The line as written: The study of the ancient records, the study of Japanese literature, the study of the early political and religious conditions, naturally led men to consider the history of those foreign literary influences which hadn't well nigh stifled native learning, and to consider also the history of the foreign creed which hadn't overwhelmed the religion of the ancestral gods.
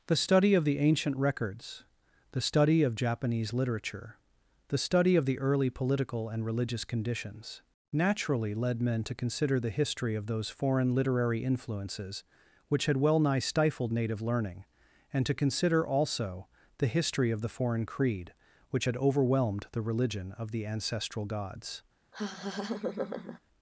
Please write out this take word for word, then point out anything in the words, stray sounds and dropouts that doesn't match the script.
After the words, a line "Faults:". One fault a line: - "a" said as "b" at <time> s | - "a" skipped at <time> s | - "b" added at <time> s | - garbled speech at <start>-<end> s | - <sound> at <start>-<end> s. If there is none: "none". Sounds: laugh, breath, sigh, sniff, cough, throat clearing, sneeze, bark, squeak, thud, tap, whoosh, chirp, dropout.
The study of the ancient records, the study of Japanese literature, the study of the early political and religious conditions, naturally led men to consider the history of those foreign literary influences which had well nigh stifled native learning, and to consider also the history of the foreign creed which had overwhelmed the religion of the ancestral gods.
Faults:
- "hadn't" said as "had" at 12.9 s
- "hadn't" said as "had" at 18.8 s
- laugh at 22.1-23.4 s